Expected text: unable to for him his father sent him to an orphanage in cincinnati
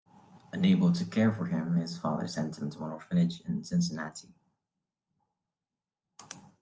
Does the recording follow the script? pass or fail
fail